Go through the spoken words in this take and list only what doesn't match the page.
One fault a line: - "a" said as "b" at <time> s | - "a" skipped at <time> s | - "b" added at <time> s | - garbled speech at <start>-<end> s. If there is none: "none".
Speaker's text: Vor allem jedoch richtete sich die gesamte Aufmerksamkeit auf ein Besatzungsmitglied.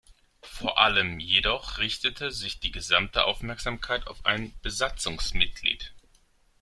none